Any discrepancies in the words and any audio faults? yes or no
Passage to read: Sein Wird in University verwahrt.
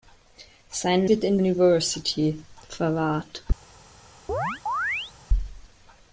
yes